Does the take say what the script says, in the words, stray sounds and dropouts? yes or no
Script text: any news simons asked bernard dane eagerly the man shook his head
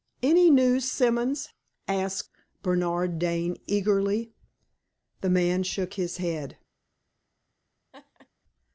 no